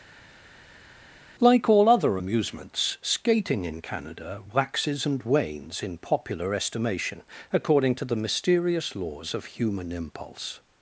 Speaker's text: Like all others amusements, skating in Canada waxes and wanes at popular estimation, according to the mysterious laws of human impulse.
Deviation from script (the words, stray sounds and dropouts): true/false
true